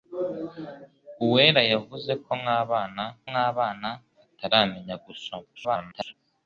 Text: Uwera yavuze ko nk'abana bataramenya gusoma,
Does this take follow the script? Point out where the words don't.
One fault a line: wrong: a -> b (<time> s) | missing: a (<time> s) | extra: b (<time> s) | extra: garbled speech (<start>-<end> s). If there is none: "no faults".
extra: nk'abana (3.3 s)
extra: garbled speech (5.6-6.1 s)